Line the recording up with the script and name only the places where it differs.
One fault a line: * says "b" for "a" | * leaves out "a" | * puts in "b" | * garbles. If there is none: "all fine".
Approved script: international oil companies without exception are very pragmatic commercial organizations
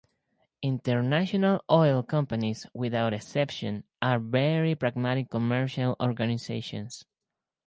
all fine